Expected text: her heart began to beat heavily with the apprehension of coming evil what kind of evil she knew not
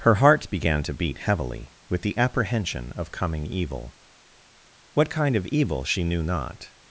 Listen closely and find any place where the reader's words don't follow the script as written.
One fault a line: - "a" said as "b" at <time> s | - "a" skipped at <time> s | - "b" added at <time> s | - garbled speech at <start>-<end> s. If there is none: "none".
none